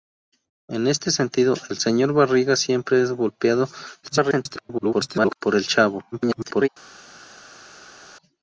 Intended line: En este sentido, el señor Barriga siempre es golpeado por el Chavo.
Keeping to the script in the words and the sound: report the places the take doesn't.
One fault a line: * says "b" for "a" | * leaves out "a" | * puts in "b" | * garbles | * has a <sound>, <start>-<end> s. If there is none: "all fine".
* garbles
* garbles